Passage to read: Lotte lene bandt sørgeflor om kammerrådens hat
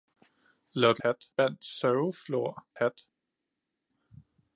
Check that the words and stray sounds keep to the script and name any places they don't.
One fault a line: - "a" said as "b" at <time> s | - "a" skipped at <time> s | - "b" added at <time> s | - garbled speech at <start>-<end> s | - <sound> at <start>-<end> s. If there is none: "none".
- "lene" said as "hat" at 1.0 s
- "om kammerrådens" skipped at 2.7 s